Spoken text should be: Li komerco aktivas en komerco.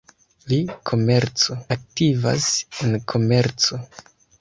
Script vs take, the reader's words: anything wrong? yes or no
no